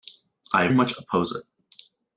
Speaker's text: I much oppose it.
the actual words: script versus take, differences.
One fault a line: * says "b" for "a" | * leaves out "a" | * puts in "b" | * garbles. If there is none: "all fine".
all fine